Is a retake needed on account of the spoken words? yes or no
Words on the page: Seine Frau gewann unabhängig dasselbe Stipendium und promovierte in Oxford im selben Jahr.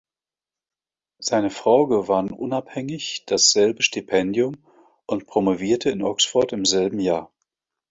no